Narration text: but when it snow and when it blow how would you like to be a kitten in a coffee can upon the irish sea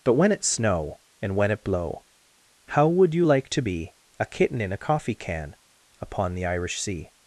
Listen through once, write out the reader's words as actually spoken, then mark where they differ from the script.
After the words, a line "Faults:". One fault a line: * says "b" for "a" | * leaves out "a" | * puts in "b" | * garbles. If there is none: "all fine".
but when it snow and when it blow how would you like to be a kitten in a coffee can upon the irish sea
Faults:
all fine